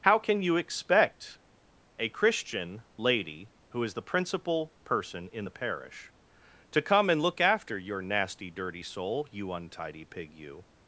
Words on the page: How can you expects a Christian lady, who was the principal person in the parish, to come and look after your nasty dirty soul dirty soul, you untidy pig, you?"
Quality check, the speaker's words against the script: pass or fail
fail